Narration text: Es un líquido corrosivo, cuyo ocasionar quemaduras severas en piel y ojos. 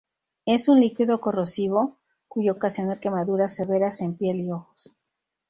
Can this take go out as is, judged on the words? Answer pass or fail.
pass